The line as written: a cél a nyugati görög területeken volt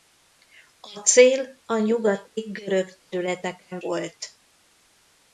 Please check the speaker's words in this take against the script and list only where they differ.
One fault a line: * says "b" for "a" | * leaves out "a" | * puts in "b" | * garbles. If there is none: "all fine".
all fine